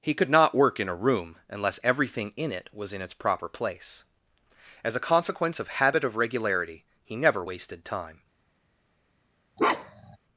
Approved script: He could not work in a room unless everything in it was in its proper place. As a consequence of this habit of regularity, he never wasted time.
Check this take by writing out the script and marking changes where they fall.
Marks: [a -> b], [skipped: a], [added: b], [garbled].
He could not work in a room unless everything in it was in its proper place. As a consequence of [skipped: this] habit of regularity, he never wasted time.